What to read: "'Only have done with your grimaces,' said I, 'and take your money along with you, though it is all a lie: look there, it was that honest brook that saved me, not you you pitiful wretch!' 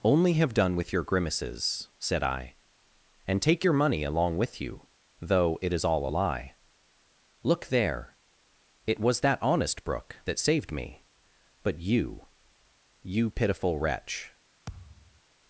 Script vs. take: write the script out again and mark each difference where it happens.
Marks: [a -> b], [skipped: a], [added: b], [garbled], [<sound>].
"'Only have done with your grimaces,' said I, 'and take your money along with you, though it is all a lie: look there, it was that honest brook that saved me, [not -> but] you you pitiful wretch!' [thud]